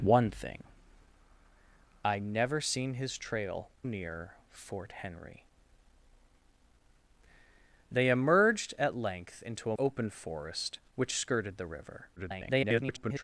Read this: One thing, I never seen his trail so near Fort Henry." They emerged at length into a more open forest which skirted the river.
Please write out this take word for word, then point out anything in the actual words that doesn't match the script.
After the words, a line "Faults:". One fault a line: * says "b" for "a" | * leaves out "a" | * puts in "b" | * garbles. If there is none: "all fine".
One thing, I never seen his trail near Fort Henry." They emerged at length into a open forest which skirted the river. [garbled]
Faults:
* leaves out "so"
* leaves out "more"
* garbles